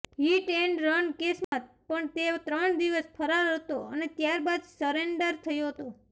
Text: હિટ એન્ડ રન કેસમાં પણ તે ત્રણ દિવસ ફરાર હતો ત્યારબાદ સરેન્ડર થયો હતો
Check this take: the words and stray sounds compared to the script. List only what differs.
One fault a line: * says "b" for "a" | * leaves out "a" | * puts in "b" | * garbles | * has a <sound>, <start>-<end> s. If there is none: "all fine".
* has a dropout, 1.4-1.5 s
* puts in "અને"